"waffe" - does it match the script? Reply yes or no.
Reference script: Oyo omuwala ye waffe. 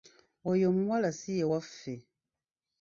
yes